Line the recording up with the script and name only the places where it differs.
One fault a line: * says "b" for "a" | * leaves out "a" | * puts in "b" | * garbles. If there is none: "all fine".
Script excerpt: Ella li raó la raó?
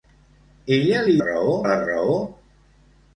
all fine